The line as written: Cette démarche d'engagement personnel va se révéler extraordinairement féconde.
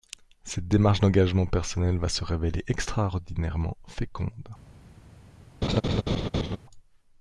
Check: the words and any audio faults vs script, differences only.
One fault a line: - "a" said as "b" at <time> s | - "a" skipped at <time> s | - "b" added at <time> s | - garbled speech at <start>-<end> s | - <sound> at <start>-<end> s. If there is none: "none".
- laugh at 5.6-6.6 s